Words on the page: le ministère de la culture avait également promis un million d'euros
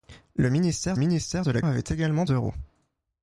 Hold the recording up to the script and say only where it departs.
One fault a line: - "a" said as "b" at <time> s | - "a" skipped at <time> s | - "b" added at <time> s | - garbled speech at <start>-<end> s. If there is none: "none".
- "ministère" added at 1.0 s
- "culture" skipped at 1.6 s
- "promis un million" skipped at 2.3 s